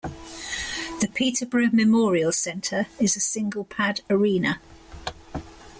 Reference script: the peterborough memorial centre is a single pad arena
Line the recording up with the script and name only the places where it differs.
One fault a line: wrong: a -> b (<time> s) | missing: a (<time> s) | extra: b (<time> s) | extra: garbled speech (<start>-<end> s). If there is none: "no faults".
no faults